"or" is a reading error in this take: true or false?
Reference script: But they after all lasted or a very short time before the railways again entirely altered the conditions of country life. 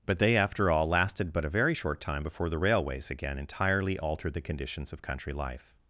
true